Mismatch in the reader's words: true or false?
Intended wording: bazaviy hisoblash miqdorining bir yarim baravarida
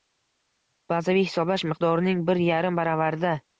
false